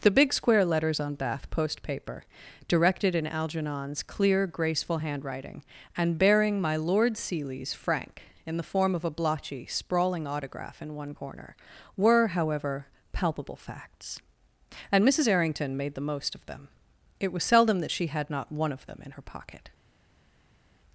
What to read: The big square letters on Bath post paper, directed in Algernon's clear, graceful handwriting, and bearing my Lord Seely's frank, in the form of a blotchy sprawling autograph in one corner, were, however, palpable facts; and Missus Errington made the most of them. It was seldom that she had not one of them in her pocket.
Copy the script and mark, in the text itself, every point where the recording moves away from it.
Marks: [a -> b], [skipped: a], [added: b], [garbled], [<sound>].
The big square letters on Bath post paper, directed in Algernon's clear, graceful handwriting, and bearing my Lord Seely's frank, in the form of a blotchy sprawling autograph in one corner, were, however, palpable facts; and Missus Errington made the most of them. It was seldom that she had not one of them in her pocket.